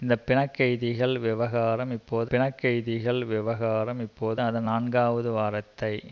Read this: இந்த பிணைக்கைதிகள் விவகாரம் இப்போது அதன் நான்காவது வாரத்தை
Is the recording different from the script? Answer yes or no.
yes